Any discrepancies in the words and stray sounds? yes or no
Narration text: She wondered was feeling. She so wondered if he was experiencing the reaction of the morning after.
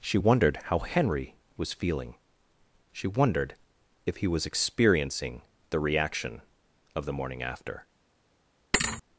yes